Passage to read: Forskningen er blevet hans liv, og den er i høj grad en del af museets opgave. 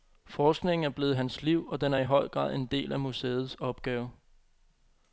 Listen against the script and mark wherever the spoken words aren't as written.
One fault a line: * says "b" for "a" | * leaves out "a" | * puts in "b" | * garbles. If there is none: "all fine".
all fine